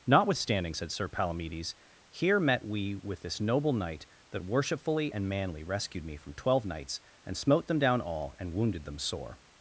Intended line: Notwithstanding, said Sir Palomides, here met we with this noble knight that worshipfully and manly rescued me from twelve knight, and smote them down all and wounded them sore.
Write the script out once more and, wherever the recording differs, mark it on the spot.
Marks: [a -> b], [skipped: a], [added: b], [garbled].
Notwithstanding, said Sir Palomides, here met we with this noble knight that worshipfully and manly rescued me from twelve [knight, -> knights] and smote them down all and wounded them sore.